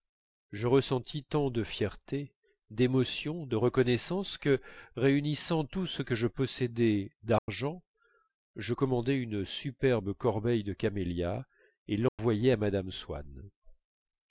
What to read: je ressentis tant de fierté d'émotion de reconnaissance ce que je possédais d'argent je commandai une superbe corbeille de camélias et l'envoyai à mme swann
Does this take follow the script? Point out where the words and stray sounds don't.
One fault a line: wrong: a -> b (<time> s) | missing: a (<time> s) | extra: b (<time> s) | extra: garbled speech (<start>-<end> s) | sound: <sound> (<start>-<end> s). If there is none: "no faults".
extra: que réunissant tout (4.4 s)
sound: dropout (7.4-7.5 s)
sound: dropout (12.1-12.2 s)